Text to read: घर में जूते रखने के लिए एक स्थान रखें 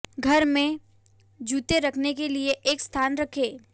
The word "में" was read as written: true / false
true